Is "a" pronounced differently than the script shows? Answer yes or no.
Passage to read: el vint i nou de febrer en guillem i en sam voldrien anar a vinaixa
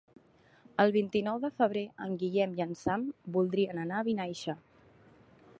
no